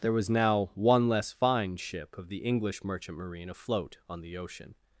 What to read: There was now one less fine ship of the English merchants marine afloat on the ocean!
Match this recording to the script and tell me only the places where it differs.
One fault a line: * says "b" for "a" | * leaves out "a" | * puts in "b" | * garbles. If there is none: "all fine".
* says "merchant" for "merchants"